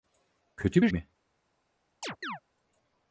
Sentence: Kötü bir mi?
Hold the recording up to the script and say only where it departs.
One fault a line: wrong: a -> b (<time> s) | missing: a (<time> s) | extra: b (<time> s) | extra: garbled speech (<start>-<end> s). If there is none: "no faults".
no faults